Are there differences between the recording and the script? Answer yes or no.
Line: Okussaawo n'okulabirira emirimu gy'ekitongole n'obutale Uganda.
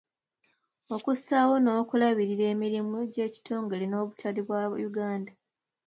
yes